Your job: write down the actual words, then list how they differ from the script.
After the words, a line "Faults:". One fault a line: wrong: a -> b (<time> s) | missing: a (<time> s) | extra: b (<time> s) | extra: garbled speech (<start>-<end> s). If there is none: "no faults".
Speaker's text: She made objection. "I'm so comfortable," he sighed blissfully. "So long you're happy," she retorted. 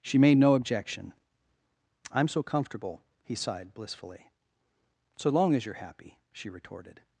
She made no objection. "I'm so comfortable," he sighed blissfully. "So long as you're happy," she retorted.
Faults:
extra: no (0.4 s)
extra: as (5.5 s)